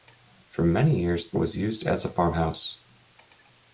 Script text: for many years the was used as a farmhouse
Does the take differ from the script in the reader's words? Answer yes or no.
no